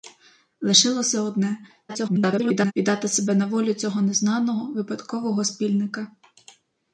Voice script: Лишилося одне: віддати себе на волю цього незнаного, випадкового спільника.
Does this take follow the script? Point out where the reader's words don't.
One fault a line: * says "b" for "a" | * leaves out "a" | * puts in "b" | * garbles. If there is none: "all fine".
* garbles